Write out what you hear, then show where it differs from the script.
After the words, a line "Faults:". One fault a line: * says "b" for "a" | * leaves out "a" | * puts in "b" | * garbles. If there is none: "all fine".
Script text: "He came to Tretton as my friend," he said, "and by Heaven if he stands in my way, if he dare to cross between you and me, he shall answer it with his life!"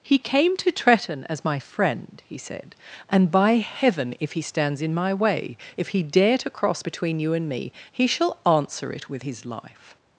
"He came to Tretton as my friend," he said, "and by Heaven if he stands in my way, if he dare to cross between you and me, he shall answer it with his life!"
Faults:
all fine